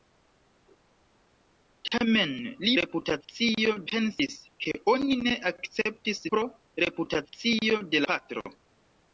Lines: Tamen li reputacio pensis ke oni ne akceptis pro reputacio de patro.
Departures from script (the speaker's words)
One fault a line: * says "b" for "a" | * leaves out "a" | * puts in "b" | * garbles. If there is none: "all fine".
all fine